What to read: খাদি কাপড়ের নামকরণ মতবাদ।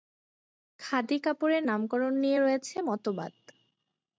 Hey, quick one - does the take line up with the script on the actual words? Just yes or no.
no